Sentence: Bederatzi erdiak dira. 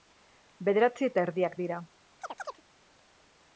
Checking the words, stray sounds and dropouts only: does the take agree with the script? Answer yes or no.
no